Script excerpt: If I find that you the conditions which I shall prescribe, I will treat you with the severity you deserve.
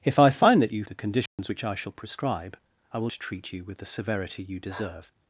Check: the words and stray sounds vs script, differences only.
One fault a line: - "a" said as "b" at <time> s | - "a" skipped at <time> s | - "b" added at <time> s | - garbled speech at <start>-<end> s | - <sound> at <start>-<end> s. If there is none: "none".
- dropout at 1.3-1.4 s